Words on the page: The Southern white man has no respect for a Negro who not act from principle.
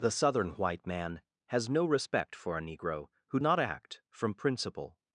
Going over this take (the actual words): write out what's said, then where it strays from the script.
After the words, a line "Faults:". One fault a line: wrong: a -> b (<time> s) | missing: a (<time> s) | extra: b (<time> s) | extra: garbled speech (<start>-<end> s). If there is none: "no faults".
The Southern white man has no respect for a Negro who not act from principle.
Faults:
no faults